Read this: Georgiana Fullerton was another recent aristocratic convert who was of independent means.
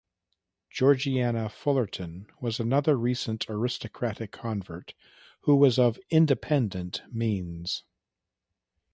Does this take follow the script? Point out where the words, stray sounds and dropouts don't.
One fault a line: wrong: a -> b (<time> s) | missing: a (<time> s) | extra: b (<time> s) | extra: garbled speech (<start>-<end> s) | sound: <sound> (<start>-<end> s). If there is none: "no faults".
no faults